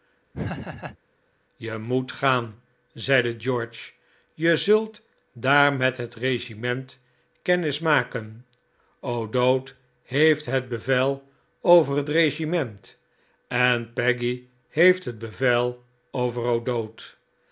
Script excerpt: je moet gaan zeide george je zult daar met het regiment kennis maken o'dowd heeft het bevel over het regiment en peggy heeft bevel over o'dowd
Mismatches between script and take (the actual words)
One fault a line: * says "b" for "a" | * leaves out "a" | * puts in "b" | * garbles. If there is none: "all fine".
* puts in "het"